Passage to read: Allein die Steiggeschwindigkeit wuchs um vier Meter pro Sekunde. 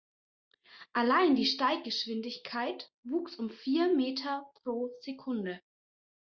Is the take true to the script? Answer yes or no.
yes